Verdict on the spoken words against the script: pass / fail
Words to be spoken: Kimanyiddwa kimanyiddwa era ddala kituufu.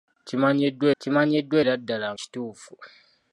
pass